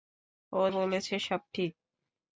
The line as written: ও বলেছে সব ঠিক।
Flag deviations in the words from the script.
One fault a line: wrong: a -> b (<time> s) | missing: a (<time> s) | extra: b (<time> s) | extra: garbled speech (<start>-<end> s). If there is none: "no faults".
no faults